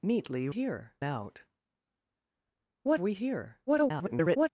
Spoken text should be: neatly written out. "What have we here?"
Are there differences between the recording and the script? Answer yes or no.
yes